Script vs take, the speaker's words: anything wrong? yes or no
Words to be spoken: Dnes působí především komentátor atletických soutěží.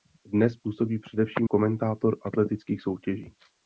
no